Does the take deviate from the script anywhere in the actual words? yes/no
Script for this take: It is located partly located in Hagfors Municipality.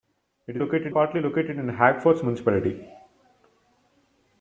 no